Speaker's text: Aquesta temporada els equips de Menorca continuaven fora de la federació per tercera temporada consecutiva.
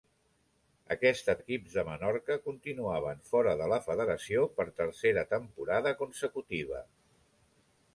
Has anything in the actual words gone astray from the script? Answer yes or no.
yes